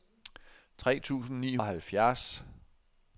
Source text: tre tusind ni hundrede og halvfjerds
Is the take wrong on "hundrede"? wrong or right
wrong